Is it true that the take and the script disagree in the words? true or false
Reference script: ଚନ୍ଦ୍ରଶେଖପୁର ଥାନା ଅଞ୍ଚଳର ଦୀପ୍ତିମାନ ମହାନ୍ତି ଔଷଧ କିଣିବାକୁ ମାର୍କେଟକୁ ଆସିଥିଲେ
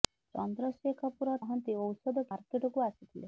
true